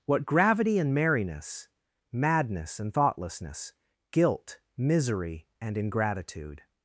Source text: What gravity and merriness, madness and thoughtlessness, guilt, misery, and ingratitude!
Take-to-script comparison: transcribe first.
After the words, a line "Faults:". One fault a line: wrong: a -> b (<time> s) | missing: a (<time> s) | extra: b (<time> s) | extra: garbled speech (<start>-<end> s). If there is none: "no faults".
What gravity and merriness, madness and thoughtlessness, guilt, misery, and ingratitude!
Faults:
no faults